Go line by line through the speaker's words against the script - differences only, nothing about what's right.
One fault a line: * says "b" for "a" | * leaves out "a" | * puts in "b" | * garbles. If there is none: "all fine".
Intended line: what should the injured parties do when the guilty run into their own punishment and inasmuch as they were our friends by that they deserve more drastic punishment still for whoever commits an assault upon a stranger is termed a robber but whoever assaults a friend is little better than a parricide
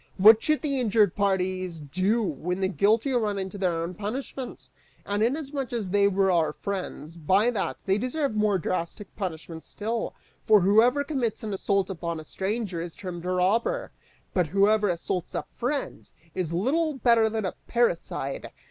all fine